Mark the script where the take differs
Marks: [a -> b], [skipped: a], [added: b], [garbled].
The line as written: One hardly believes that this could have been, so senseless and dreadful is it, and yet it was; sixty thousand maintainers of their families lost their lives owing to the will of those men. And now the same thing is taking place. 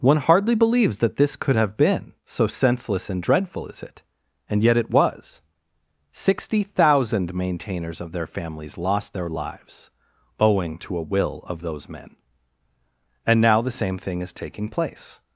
One hardly believes that this could have been, so senseless and dreadful is it, and yet it was; sixty thousand maintainers of their families lost their lives owing to [the -> a] will of those men. And now the same thing is taking place.